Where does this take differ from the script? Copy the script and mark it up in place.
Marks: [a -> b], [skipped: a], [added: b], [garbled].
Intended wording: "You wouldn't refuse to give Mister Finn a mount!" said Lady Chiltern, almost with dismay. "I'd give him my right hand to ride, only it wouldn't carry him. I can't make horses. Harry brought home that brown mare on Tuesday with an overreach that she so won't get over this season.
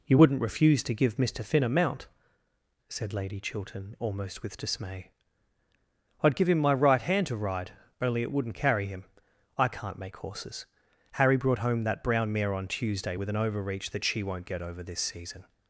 "You wouldn't refuse to give Mister Finn a mount!" said Lady Chiltern, almost with dismay. "I'd give him my right hand to ride, only it wouldn't carry him. I can't make horses. Harry brought home that brown mare on Tuesday with an overreach that she [skipped: so] won't get over this season.